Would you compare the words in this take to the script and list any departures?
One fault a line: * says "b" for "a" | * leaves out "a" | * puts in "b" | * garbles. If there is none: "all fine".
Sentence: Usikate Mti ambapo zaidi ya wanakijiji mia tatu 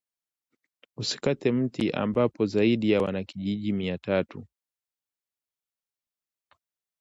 all fine